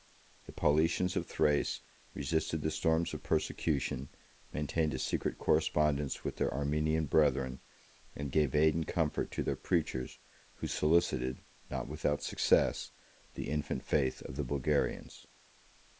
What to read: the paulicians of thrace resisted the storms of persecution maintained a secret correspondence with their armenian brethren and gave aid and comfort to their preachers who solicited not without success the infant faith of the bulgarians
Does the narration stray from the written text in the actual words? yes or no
no